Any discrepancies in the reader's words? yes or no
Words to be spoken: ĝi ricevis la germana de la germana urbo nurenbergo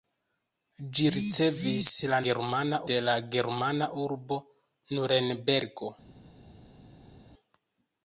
no